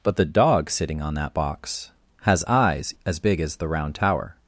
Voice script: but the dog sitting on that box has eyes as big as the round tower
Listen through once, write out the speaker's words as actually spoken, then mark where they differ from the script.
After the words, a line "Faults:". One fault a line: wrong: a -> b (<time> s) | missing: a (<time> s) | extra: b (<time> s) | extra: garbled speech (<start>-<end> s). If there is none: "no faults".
but the dog sitting on that box has eyes as big as the round tower
Faults:
no faults